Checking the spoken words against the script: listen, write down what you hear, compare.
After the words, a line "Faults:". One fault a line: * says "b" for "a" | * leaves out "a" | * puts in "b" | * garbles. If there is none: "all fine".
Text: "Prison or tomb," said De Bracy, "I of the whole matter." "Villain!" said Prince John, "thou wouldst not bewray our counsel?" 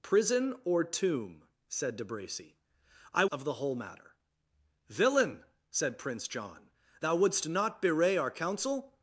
"Prison or tomb," said De Bracy, "I of the whole matter." "Villain!" said Prince John, "thou wouldst not bewray our counsel?"
Faults:
all fine